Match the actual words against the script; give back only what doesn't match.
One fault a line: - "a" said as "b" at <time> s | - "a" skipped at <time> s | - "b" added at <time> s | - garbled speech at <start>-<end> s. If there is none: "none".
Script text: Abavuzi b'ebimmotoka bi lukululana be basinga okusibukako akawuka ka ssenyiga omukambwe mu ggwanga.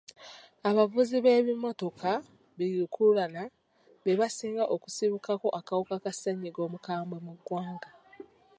none